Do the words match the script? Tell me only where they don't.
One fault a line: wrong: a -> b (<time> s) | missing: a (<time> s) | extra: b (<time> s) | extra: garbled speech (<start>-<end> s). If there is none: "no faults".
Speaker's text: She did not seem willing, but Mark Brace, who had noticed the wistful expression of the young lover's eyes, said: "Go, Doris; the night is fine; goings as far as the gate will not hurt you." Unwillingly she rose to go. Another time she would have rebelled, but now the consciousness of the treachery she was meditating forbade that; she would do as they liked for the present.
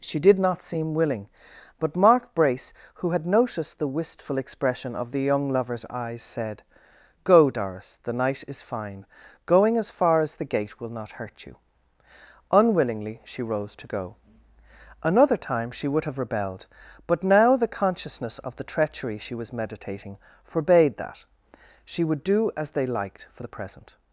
wrong: goings -> going (9.4 s)